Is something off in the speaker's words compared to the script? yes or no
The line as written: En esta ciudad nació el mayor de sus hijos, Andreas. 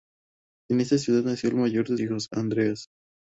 yes